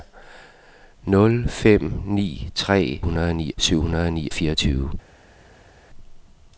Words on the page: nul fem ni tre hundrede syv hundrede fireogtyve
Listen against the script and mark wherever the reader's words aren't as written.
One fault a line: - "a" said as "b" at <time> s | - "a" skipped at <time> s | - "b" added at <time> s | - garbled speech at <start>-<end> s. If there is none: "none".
none